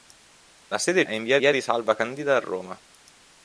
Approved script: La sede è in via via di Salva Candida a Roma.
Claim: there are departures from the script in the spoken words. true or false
false